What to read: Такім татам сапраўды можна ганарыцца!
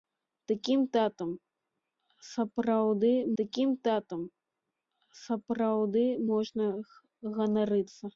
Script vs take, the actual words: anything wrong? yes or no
yes